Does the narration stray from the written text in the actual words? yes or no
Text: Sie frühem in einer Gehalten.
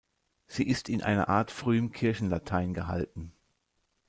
yes